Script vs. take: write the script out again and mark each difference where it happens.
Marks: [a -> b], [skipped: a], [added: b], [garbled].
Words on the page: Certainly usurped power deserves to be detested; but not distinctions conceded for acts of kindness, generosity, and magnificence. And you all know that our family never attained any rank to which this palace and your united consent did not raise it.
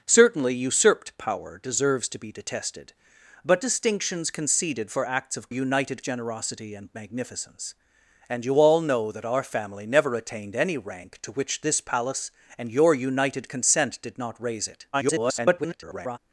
Certainly usurped power deserves to be detested; but [skipped: not] distinctions conceded for acts of [kindness, -> united] generosity, and magnificence. And you all know that our family never attained any rank to which this palace and your united consent did not raise it. [garbled]